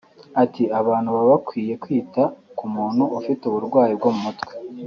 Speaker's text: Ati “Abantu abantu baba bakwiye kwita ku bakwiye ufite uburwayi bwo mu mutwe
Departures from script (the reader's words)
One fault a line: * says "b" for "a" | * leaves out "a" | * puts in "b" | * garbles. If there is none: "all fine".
* leaves out "abantu"
* says "muntu" for "bakwiye"